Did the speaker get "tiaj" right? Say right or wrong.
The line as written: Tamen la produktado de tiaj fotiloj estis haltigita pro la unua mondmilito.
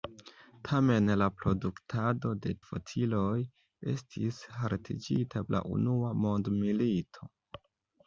wrong